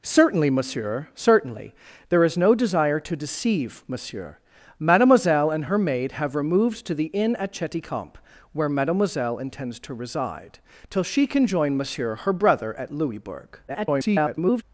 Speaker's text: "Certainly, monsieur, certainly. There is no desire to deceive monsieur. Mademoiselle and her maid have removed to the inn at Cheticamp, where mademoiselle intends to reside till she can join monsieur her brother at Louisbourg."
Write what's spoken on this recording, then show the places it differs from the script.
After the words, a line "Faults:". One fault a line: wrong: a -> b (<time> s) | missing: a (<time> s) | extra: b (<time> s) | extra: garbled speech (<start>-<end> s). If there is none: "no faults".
"Certainly, monsieur, certainly. There is no desire to deceive monsieur. Mademoiselle and her maid have removed to the inn at Cheticamp, where mademoiselle intends to reside till she can join monsieur her brother at Louisbourg." [garbled]
Faults:
extra: garbled speech (13.7-14.6 s)